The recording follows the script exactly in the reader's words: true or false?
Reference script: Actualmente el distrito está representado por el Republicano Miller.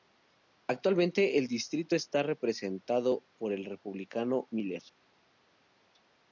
true